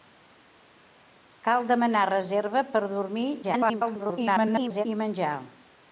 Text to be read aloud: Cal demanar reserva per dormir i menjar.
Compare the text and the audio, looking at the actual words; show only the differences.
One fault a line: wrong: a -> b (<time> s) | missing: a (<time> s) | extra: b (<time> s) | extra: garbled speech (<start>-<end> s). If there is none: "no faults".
extra: garbled speech (3.4-4.8 s)